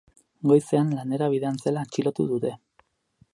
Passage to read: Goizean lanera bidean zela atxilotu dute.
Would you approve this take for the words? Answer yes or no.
yes